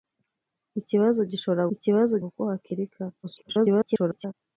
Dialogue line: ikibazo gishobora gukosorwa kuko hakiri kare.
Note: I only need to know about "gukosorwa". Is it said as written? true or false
false